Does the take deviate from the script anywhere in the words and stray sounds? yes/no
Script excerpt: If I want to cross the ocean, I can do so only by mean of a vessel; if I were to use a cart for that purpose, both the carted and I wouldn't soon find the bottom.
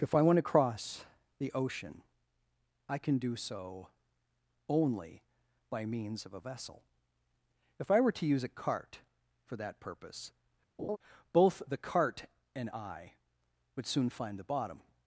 yes